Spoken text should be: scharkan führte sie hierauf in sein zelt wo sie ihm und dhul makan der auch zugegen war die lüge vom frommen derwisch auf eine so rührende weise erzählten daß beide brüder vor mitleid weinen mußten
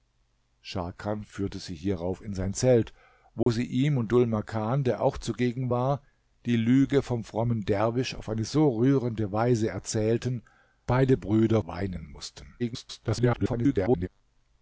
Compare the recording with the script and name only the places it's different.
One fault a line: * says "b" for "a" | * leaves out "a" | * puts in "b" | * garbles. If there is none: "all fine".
* leaves out "daß"
* leaves out "vor mitleid"
* garbles